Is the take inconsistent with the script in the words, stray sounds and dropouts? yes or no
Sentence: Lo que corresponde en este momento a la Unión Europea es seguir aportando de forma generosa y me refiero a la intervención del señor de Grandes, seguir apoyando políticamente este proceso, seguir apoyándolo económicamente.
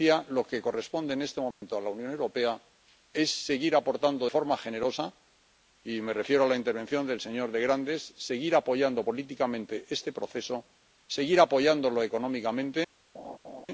yes